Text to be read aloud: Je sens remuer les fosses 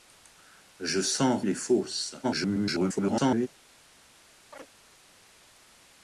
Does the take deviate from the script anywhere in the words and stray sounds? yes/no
yes